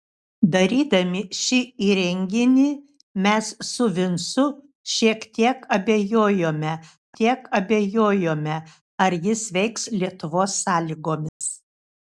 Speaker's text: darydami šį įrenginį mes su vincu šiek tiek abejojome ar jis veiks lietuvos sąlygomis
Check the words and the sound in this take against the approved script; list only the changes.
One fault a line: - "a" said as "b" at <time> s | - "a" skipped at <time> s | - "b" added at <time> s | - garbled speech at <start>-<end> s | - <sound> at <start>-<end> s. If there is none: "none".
- "tiek abejojome" added at 7.2 s
- dropout at 11.3-11.4 s